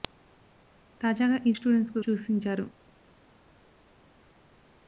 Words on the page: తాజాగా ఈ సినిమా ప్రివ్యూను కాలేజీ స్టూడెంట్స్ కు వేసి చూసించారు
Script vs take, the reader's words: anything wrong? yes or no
yes